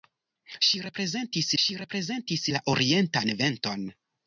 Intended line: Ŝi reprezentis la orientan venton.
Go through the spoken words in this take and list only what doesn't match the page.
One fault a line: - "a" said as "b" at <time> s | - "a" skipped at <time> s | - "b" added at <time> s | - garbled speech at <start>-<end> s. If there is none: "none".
- "ŝi reprezentis" added at 1.6 s